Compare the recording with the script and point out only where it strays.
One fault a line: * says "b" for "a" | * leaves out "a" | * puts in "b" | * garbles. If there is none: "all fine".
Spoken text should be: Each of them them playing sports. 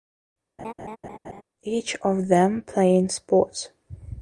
* leaves out "them"